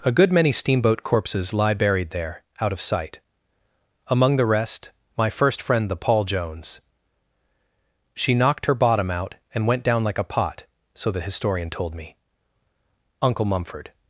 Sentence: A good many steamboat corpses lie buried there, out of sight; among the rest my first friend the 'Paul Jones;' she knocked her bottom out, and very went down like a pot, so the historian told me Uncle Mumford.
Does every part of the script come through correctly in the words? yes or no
no